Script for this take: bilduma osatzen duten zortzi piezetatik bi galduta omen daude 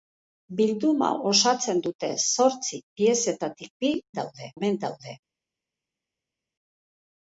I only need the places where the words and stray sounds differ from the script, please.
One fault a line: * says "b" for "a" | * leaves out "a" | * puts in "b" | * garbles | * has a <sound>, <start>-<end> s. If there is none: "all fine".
* says "daude" for "galduta"